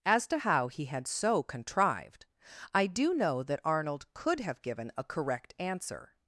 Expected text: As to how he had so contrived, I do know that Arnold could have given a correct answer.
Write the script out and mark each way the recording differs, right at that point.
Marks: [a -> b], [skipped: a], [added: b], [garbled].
As to how he had so contrived, I do know that Arnold could have given a correct answer.